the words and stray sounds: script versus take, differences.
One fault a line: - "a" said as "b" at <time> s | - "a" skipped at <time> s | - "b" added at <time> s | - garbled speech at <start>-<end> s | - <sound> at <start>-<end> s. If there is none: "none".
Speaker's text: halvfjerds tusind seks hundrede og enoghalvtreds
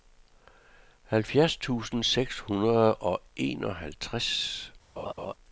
- laugh at 5.0-5.3 s